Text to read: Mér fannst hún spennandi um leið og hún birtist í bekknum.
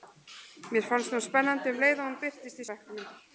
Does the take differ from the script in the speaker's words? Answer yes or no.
no